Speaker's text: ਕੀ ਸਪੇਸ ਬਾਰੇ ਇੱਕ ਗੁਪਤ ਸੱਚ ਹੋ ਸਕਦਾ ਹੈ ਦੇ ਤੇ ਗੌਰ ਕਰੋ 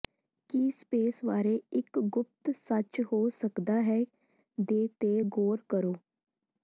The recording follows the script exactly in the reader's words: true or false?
true